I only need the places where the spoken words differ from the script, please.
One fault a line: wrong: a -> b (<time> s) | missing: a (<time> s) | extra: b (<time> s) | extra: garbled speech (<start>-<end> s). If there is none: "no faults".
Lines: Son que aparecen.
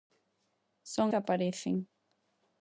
no faults